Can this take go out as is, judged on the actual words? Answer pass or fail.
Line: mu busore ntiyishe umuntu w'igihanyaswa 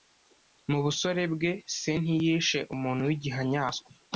fail